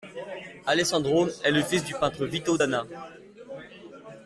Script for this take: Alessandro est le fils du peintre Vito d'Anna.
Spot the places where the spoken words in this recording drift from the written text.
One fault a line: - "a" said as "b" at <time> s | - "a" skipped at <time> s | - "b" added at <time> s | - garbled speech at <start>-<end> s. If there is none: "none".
none